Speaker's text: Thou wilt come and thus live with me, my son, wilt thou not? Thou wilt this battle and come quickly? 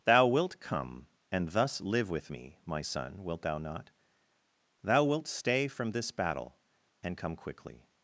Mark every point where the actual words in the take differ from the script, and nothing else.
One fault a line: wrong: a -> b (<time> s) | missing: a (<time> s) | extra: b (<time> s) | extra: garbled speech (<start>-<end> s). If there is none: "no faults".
extra: stay from (5.3 s)